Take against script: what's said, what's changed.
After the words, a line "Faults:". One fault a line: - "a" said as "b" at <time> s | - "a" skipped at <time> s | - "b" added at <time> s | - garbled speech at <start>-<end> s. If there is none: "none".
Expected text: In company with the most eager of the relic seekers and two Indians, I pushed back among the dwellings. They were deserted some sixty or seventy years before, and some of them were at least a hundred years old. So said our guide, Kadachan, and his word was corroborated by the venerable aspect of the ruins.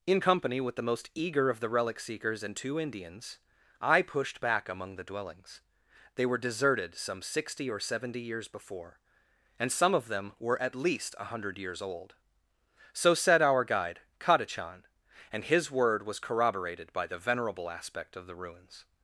In company with the most eager of the relic seekers and two Indians, I pushed back among the dwellings. They were deserted some sixty or seventy years before, and some of them were at least a hundred years old. So said our guide, Kadachan, and his word was corroborated by the venerable aspect of the ruins.
Faults:
none